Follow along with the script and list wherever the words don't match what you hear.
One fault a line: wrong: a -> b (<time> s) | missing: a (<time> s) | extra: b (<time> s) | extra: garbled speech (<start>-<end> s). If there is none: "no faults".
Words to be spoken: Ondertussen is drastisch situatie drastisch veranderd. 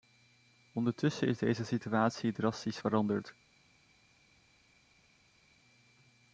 wrong: drastisch -> deze (1.4 s)